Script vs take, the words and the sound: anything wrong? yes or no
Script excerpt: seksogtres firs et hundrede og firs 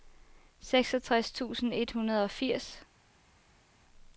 yes